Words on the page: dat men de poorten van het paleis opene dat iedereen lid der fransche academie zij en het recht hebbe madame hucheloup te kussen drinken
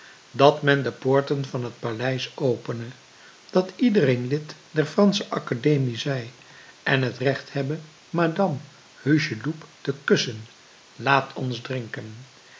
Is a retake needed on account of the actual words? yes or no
yes